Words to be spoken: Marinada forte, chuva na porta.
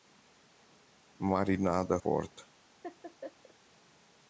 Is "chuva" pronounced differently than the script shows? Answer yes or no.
yes